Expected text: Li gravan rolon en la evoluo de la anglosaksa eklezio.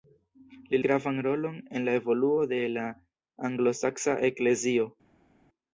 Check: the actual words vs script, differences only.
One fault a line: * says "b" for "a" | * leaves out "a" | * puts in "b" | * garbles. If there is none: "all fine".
all fine